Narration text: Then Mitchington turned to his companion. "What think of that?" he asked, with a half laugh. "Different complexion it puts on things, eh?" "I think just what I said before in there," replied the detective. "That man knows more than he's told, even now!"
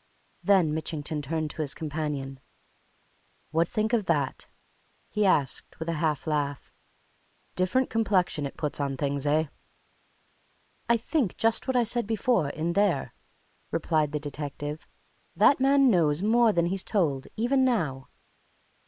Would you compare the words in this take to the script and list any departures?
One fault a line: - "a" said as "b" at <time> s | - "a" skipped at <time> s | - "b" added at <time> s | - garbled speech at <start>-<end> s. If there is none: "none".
none